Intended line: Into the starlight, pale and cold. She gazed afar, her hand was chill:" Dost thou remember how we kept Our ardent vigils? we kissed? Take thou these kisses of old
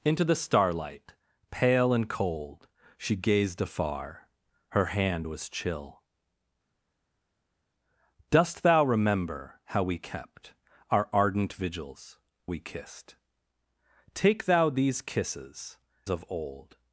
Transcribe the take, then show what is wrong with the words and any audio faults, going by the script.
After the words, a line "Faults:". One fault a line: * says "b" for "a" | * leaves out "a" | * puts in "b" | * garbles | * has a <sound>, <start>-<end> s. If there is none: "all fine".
Into the starlight, pale and cold. She gazed afar, her hand was chill:" Dost thou remember how we kept Our ardent vigils? we kissed? Take thou these kisses of old
Faults:
all fine